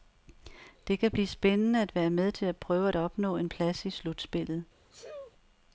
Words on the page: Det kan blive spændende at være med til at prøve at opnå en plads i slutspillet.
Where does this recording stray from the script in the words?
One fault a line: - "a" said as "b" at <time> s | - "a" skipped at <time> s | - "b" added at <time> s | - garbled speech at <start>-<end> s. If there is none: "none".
none